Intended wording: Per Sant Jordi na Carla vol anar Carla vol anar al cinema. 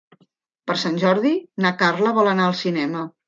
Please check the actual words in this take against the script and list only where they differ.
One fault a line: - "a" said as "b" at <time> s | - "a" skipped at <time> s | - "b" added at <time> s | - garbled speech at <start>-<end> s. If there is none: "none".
- "Carla vol anar" skipped at 2.5 s